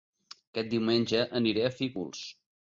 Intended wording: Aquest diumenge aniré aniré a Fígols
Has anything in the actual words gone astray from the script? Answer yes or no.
yes